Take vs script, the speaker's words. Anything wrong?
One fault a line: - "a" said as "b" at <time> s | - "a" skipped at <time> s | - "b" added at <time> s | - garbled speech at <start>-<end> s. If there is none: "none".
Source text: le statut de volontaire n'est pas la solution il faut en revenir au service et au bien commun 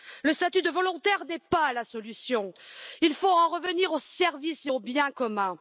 none